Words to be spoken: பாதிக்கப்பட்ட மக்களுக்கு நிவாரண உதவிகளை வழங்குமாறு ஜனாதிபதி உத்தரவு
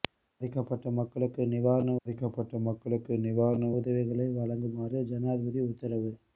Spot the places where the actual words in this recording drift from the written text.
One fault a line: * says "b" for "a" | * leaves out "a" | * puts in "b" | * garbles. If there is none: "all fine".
* puts in "பாதிக்கப்பட்ட மக்களுக்கு நிவாரண"